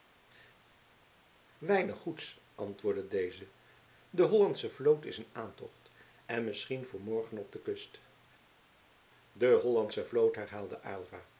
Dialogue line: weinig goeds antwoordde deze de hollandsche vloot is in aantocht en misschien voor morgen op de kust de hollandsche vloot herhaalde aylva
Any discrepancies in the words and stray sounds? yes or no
no